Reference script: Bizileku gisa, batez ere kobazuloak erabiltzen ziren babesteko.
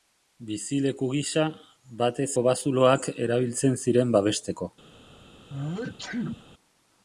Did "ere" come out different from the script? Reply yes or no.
yes